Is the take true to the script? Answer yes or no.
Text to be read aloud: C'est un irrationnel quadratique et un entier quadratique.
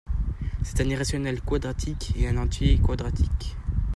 yes